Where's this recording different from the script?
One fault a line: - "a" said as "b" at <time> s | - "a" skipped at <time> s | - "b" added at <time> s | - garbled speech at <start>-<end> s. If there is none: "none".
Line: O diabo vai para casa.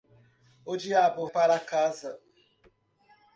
- "vai" skipped at 1.3 s